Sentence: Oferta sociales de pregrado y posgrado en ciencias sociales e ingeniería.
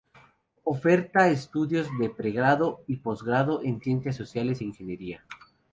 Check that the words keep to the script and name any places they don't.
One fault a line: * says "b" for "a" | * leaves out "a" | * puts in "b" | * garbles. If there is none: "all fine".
* says "estudios" for "sociales"